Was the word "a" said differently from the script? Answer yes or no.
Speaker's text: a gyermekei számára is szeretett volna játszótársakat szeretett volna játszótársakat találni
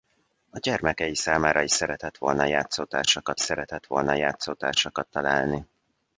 no